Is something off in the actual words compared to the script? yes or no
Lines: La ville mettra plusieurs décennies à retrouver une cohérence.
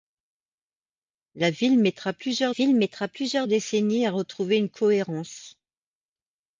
yes